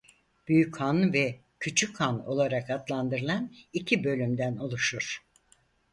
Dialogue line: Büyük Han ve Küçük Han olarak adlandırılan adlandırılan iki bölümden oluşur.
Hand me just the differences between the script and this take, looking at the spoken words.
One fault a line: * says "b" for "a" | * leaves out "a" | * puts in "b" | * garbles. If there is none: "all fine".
* leaves out "adlandırılan"